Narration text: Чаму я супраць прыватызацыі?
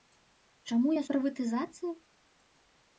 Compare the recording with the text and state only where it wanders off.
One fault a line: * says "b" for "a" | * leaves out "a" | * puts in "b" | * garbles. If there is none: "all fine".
* leaves out "супраць"